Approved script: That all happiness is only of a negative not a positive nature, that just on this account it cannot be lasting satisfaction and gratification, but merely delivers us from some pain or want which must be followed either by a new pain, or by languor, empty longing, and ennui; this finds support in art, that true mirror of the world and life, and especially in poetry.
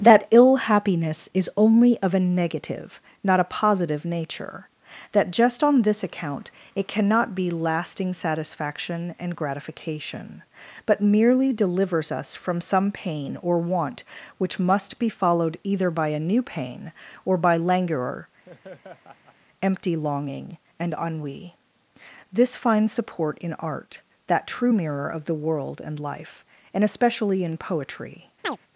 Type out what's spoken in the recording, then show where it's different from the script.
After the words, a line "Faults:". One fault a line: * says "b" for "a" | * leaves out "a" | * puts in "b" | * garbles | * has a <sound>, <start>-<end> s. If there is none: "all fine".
That ill happiness is only of a negative not a positive nature, that just on this account it cannot be lasting satisfaction and gratification, but merely delivers us from some pain or want which must be followed either by a new pain, or by languor, empty longing, and ennui; this finds support in art, that true mirror of the world and life, and especially in poetry.
Faults:
* says "ill" for "all"
* has a laugh, 18.4-19.4 s
* has a chirp, 28.4-28.6 s